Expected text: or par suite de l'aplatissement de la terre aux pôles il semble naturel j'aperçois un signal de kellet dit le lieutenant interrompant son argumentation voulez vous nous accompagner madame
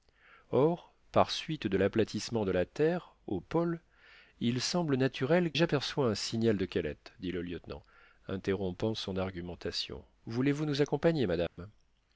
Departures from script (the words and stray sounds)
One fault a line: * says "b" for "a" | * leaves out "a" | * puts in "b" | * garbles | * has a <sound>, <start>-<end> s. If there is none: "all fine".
* has a dropout, 11.5-11.6 s